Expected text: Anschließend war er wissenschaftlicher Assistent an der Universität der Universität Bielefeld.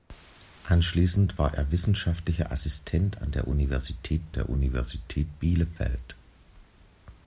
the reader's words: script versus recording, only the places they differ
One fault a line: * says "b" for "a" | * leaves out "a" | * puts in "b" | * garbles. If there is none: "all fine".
all fine